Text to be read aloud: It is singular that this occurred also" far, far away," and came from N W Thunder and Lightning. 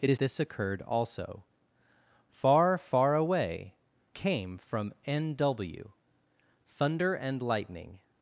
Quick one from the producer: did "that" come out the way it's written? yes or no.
no